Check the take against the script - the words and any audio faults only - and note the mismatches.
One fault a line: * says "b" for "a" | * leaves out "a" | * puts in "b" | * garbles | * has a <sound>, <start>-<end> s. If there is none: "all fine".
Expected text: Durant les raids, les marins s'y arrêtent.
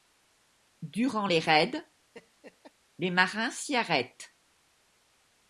* has a laugh, 2.1-2.7 s